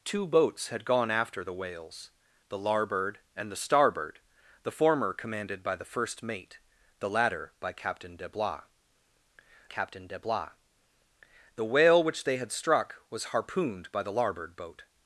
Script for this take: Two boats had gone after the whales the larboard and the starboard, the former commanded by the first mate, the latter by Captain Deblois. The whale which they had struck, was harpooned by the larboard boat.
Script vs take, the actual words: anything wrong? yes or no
yes